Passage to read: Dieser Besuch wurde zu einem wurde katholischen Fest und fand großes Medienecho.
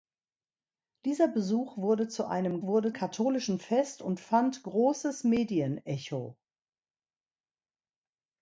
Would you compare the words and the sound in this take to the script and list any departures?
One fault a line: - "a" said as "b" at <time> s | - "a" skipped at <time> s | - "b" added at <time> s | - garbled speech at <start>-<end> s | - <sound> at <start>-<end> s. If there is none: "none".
none